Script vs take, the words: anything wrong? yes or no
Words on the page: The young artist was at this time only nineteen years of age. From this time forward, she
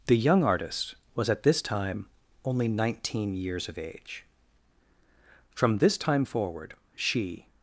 no